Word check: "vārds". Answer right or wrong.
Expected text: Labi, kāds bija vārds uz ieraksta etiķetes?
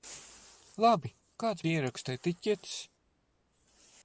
wrong